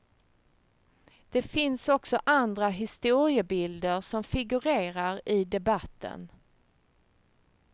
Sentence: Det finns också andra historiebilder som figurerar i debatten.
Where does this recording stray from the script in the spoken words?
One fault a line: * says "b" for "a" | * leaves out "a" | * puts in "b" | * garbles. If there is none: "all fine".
all fine